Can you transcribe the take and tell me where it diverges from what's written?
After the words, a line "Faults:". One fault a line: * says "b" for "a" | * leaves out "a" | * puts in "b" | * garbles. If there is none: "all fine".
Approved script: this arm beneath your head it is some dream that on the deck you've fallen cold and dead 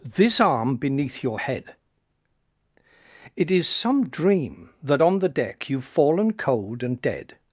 this arm beneath your head it is some dream that on the deck you've fallen cold and dead
Faults:
all fine